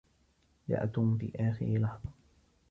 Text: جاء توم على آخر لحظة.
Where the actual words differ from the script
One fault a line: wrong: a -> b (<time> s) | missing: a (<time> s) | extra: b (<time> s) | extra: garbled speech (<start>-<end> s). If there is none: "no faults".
wrong: على -> في (1.2 s)